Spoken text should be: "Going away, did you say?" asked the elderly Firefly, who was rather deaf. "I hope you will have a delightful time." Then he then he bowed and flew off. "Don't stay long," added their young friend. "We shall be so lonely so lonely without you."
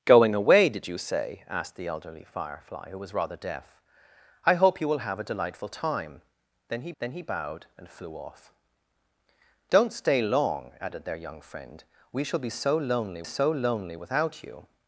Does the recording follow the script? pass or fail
pass